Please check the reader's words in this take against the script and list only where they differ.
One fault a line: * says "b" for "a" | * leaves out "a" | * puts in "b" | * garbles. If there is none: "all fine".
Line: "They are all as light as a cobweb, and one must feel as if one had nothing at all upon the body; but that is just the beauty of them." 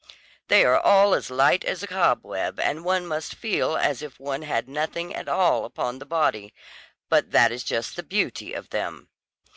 all fine